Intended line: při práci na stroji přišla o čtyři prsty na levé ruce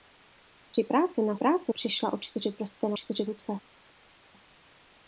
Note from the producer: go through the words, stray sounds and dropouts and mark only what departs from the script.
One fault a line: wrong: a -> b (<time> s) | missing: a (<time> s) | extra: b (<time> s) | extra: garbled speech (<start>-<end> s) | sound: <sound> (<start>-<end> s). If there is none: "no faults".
wrong: stroji -> práci (1.3 s)
wrong: levé -> čtyři (2.9 s)